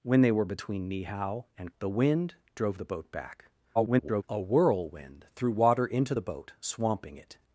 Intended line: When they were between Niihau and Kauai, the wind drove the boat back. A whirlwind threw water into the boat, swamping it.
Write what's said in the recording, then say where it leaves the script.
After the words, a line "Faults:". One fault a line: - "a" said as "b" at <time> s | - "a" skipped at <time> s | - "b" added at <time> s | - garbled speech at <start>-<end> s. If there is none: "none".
When they were between Niihau and The wind drove the boat back. [garbled] A whirlwind threw water into the boat, swamping it.
Faults:
- "Kauai" skipped at 1.7 s
- garbled speech at 3.7-4.2 s